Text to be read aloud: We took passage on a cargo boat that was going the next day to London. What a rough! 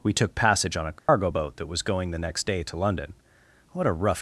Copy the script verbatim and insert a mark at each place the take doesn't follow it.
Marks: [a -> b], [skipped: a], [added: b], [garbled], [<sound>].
We took passage on a cargo [dropout] boat that was going the next day to London. What a rough!